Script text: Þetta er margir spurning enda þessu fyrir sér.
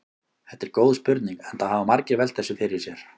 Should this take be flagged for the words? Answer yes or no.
yes